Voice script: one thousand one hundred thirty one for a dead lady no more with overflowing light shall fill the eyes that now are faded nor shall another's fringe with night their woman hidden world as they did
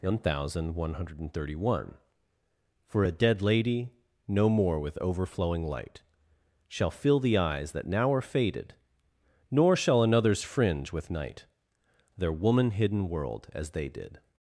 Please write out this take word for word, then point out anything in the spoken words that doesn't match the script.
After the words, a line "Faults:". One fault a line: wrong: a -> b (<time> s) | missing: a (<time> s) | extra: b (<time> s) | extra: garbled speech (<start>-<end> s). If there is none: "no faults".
one thousand one hundred thirty one for a dead lady no more with overflowing light shall fill the eyes that now are faded nor shall another's fringe with night their woman hidden world as they did
Faults:
no faults